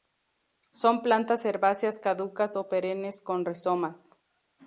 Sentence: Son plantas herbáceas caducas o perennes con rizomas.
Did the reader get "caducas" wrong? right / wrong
right